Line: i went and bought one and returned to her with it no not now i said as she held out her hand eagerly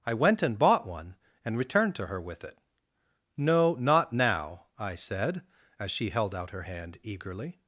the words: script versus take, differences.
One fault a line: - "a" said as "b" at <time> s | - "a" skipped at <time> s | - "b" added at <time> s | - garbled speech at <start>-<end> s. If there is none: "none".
none